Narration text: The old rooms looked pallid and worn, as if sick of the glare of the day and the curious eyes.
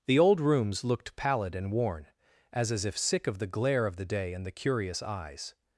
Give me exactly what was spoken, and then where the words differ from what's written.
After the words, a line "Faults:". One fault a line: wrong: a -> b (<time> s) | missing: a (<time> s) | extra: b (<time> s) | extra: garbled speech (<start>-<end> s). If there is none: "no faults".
The old rooms looked pallid and worn, as as if sick of the glare of the day and the curious eyes.
Faults:
extra: as (2.7 s)